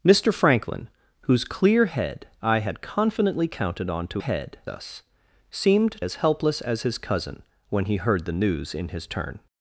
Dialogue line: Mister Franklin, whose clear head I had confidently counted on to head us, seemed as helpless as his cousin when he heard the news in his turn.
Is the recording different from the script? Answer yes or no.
no